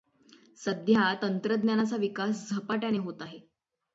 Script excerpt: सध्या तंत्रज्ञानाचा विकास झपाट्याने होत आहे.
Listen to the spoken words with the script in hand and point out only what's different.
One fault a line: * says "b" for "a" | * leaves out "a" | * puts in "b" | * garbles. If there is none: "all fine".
all fine